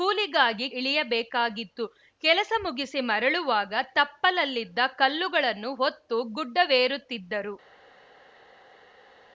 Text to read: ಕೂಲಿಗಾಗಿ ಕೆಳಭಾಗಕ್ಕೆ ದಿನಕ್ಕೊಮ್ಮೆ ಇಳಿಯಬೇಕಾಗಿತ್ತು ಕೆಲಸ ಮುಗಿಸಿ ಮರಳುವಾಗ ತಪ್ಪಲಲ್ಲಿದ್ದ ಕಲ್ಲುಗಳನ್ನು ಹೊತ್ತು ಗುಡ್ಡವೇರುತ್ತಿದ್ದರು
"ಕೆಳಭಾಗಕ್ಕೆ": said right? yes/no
no